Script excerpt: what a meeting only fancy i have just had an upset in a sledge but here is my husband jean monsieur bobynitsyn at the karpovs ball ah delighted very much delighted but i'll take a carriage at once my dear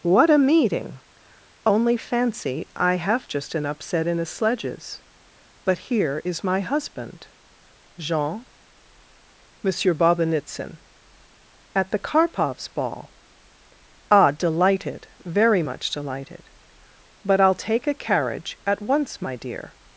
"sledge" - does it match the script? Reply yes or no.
no